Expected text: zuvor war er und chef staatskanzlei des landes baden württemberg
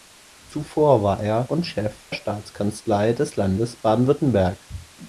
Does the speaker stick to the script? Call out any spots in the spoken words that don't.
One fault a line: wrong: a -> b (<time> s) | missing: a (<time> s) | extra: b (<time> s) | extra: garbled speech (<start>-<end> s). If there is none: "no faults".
no faults